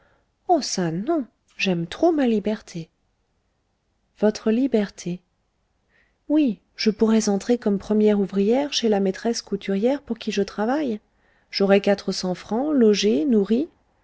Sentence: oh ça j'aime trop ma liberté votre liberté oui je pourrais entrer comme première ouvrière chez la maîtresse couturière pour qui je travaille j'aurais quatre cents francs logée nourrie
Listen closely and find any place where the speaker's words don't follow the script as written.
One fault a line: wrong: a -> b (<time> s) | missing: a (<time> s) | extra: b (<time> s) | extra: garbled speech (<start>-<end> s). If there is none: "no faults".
extra: non (0.9 s)